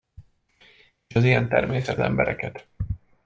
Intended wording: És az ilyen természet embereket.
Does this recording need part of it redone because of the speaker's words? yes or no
no